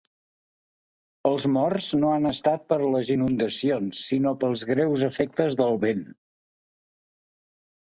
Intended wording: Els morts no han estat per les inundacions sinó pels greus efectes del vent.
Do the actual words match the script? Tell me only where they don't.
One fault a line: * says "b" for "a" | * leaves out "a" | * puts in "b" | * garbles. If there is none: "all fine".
all fine